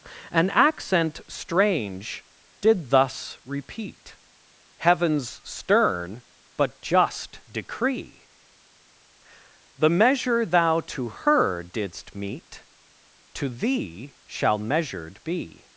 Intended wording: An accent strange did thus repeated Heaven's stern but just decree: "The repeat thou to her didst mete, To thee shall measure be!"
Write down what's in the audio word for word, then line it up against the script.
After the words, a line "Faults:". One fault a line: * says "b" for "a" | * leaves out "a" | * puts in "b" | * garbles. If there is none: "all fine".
An accent strange did thus repeat Heaven's stern but just decree: "The measure thou to her didst mete, To thee shall measured be!"
Faults:
* says "repeat" for "repeated"
* says "measure" for "repeat"
* says "measured" for "measure"